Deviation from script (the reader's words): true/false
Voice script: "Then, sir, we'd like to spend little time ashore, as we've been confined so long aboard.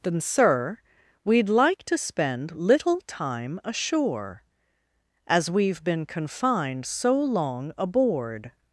false